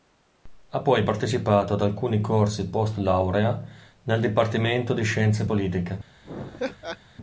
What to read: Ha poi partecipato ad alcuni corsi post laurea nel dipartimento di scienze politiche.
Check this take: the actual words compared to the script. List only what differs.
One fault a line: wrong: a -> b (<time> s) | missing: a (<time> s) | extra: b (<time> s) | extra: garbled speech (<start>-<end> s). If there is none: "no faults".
no faults